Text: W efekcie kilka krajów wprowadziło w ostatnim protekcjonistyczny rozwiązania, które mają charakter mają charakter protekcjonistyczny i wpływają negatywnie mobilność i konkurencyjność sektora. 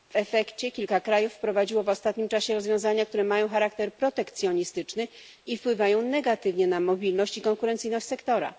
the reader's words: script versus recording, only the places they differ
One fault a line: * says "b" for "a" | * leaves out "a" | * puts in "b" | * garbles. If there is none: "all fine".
* says "czasie" for "protekcjonistyczny"
* leaves out "mają charakter"
* puts in "na"